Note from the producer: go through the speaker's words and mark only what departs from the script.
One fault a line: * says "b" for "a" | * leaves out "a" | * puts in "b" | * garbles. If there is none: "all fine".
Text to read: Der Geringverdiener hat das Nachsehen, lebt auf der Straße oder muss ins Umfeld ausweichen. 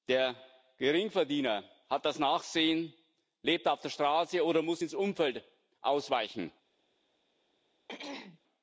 all fine